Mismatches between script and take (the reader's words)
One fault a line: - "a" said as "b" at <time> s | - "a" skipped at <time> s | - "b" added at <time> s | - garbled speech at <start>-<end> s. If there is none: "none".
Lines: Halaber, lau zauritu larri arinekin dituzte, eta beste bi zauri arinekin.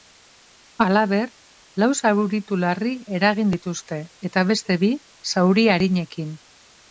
- "arinekin" said as "eragin" at 3.2 s